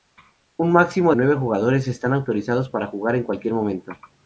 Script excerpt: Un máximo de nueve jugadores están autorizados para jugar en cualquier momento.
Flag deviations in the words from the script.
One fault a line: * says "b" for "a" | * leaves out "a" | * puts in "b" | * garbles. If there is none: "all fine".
* leaves out "de"